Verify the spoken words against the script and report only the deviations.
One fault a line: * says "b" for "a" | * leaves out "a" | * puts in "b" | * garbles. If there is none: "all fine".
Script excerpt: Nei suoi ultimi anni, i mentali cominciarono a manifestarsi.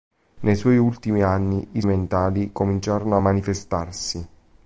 all fine